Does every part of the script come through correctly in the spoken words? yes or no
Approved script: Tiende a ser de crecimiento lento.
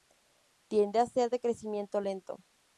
yes